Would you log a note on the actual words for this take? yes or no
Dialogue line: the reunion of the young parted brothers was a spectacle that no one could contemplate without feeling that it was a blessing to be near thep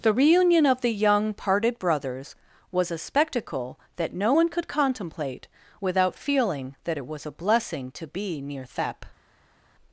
no